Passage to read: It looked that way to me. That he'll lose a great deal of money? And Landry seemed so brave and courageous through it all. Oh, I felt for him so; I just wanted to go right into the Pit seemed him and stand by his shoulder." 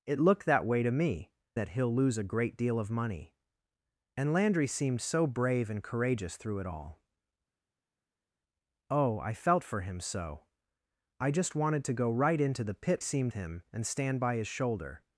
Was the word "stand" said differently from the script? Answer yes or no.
no